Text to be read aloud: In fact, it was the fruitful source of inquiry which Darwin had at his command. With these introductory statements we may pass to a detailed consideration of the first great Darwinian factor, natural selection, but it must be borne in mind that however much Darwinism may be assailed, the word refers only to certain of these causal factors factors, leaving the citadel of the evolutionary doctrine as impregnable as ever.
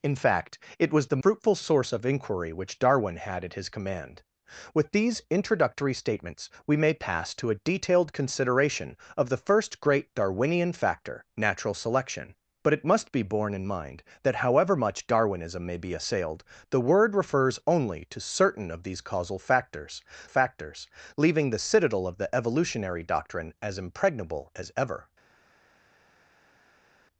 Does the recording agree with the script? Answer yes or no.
yes